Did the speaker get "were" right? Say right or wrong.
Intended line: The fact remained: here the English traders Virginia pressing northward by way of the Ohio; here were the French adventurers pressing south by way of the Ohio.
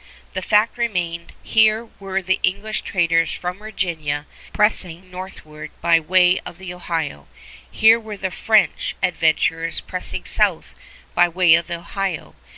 right